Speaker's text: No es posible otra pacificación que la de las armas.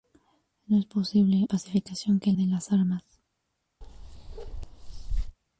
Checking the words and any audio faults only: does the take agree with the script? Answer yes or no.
no